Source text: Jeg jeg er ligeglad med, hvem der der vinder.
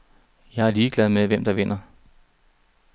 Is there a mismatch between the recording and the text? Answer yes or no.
yes